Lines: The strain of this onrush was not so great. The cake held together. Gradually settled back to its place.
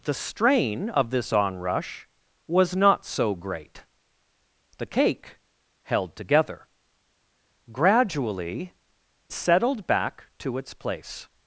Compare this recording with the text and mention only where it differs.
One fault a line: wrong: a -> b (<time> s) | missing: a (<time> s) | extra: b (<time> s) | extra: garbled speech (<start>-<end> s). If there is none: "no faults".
no faults